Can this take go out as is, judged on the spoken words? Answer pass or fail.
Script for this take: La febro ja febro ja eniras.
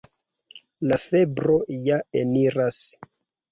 fail